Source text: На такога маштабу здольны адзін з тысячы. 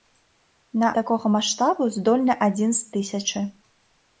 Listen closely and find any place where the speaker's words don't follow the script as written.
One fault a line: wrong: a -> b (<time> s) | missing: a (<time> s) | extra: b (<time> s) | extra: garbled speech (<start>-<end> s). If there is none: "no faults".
no faults